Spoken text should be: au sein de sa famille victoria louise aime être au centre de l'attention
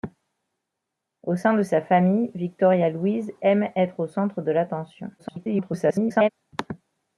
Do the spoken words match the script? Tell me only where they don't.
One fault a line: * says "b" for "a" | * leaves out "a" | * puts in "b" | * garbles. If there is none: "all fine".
* garbles